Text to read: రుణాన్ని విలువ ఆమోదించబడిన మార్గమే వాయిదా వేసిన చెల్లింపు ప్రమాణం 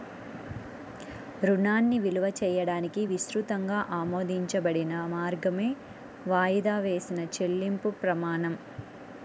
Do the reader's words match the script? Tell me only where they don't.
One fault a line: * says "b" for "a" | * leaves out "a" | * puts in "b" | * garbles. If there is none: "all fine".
* puts in "చేయడానికి విస్తృతంగా"